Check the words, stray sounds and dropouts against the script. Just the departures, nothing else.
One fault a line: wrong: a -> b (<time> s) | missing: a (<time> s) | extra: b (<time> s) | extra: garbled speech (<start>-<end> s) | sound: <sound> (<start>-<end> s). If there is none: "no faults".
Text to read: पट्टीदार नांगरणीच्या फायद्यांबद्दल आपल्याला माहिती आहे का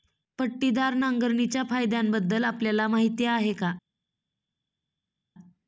no faults